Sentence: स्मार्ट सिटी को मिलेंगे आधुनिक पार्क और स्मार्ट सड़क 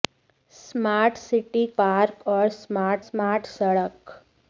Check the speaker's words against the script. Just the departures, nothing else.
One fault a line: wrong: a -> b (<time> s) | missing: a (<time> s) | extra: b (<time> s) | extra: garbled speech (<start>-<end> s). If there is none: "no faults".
missing: को मिलेंगे आधुनिक (1.6 s)
extra: स्मार्ट (3.0 s)